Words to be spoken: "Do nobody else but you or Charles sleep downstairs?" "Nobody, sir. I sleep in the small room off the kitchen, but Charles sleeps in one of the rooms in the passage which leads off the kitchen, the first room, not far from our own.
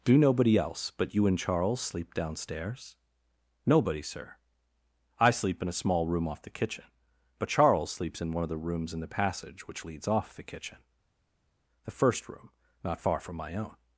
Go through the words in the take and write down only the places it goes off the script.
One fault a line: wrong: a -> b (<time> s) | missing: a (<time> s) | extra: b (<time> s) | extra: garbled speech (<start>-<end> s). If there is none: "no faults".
wrong: or -> and (1.3 s)
wrong: the -> a (5.7 s)
wrong: our -> my (13.4 s)